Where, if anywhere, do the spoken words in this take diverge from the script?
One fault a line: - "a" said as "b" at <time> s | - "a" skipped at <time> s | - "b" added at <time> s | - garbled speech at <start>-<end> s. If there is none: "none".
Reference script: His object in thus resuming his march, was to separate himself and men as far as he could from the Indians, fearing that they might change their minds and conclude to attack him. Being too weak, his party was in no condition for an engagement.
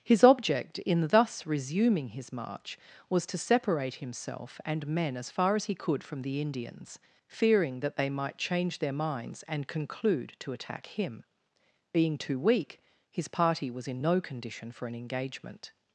none